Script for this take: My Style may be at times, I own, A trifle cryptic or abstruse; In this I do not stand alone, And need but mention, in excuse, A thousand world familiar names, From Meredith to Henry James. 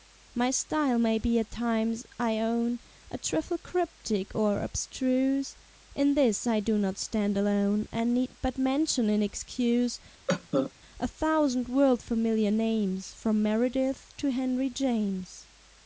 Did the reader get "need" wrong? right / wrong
right